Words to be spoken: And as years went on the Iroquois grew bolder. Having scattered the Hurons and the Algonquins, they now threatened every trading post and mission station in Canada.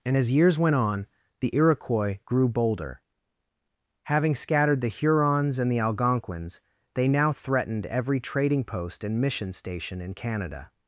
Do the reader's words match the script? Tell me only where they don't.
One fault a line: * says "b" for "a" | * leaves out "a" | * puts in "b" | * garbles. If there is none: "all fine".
all fine